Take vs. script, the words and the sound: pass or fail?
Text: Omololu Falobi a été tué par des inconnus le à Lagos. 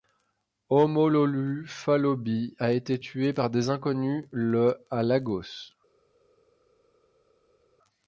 pass